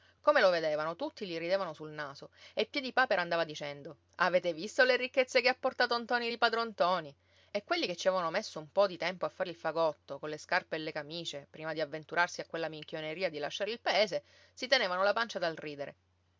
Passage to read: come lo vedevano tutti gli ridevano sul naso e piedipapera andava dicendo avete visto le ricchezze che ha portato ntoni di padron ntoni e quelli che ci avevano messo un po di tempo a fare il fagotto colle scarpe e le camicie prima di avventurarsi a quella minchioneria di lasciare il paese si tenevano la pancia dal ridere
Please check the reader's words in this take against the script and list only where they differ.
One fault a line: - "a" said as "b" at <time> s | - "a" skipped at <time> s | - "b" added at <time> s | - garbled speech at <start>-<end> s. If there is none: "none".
none